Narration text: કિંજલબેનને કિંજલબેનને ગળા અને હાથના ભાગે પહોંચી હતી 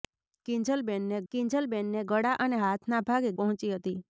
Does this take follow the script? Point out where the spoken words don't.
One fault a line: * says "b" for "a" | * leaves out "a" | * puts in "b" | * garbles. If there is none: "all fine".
all fine